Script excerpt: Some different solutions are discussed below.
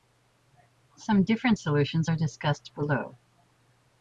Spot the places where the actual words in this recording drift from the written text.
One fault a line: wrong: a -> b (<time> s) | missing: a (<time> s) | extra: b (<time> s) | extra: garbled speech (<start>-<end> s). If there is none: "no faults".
no faults